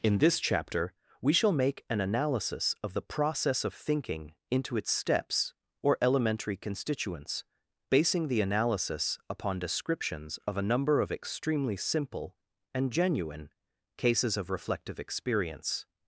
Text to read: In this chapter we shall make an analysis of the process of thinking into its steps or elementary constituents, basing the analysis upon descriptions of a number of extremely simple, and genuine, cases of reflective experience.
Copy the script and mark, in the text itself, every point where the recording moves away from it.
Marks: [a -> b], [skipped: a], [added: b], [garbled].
In this chapter we shall make an analysis of the process of thinking into its steps or elementary constituents, basing the analysis upon descriptions of a number of extremely simple, and genuine, cases of reflective experience.